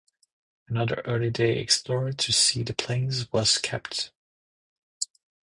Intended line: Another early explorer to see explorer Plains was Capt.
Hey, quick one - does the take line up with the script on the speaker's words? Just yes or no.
no